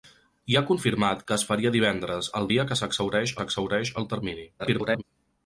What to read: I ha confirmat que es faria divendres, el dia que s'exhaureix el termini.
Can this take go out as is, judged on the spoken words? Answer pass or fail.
fail